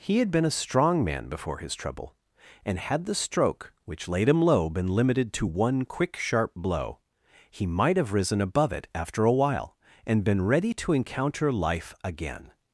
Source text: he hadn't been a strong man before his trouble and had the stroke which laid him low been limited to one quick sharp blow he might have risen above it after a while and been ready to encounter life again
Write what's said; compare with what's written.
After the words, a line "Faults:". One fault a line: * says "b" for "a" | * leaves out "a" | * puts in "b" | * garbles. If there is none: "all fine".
he had been a strong man before his trouble and had the stroke which laid him low been limited to one quick sharp blow he might have risen above it after a while and been ready to encounter life again
Faults:
* says "had" for "hadn't"